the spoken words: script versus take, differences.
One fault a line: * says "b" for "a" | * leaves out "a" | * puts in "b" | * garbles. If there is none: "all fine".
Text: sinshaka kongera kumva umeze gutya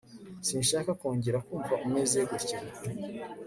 all fine